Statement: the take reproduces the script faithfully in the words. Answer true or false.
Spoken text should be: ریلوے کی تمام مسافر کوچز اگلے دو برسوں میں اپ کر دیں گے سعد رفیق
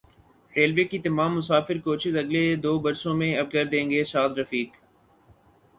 true